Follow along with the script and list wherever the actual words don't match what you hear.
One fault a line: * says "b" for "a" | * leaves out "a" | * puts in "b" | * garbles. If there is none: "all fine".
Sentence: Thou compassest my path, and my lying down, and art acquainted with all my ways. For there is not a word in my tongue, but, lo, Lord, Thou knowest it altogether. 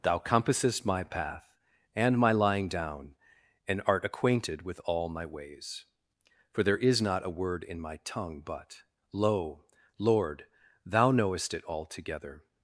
all fine